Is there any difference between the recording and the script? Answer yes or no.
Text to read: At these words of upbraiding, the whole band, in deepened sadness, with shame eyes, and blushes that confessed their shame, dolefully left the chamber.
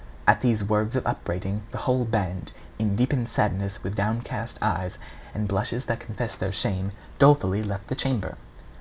yes